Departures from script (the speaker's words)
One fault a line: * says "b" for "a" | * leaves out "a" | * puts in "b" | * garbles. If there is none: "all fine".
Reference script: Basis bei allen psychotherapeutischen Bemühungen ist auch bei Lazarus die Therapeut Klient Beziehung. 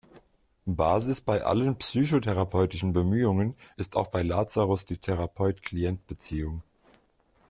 all fine